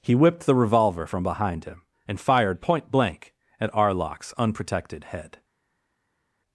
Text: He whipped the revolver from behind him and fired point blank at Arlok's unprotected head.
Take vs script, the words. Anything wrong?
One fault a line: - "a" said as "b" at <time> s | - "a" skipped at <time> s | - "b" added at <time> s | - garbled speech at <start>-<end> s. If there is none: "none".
none